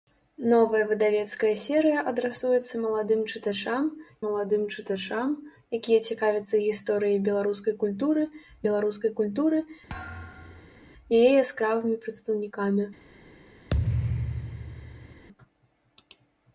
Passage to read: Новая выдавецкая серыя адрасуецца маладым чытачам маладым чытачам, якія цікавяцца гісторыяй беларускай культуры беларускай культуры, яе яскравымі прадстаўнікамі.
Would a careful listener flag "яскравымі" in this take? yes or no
no